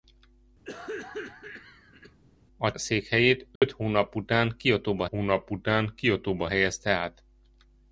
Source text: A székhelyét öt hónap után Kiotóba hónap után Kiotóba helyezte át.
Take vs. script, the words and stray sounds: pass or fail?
fail